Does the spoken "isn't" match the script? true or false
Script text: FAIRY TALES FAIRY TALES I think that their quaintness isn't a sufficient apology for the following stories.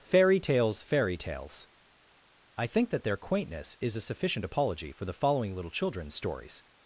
false